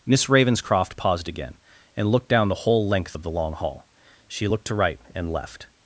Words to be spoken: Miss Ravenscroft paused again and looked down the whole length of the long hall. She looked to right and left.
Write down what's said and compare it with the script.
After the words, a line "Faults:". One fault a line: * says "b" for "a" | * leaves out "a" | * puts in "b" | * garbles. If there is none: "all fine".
Miss Ravenscroft paused again and looked down the whole length of the long hall. She looked to right and left.
Faults:
all fine